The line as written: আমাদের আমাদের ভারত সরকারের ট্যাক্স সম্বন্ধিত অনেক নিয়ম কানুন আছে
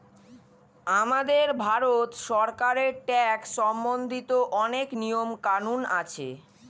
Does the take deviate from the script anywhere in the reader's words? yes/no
yes